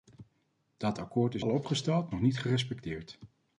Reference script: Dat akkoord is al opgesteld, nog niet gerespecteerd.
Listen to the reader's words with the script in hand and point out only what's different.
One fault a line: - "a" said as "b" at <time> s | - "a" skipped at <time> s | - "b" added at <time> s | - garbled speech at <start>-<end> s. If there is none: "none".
none